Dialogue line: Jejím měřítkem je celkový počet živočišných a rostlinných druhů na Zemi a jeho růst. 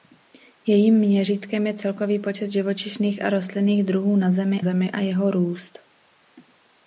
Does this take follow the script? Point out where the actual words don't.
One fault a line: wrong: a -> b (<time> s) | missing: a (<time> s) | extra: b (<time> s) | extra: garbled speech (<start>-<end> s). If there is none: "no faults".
extra: Zemi (4.6 s)